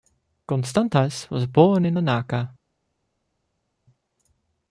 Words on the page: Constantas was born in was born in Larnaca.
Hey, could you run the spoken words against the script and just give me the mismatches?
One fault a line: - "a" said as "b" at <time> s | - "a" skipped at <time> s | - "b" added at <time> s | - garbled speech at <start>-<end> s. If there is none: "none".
- "was born in" skipped at 2.0 s